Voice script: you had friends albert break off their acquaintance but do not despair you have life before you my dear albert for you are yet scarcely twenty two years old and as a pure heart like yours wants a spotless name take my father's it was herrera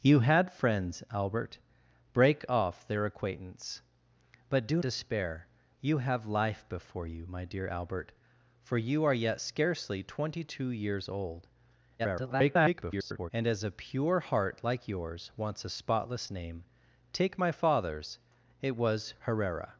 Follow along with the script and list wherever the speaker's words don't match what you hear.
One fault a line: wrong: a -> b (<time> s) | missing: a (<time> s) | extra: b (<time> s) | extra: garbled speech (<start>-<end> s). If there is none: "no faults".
missing: not (4.8 s)
extra: garbled speech (12.0-13.3 s)